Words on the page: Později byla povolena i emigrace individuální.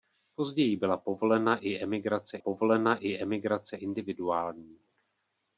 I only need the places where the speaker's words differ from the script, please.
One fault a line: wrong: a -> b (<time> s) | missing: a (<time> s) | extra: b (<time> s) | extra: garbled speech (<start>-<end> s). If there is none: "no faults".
extra: povolena i emigrace (2.4 s)